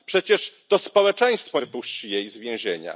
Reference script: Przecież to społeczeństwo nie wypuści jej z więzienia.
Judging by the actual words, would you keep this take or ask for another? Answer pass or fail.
fail